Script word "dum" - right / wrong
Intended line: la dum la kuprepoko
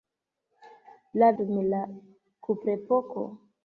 right